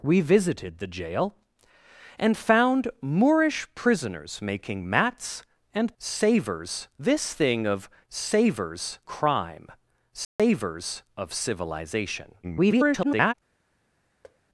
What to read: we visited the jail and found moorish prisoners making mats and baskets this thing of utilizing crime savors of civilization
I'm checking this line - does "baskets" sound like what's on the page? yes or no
no